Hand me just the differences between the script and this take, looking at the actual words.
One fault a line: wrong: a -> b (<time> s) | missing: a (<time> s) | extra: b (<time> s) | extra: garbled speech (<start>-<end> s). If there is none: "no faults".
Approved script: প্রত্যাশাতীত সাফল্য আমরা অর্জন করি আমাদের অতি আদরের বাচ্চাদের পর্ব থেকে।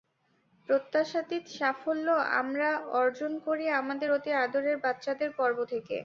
no faults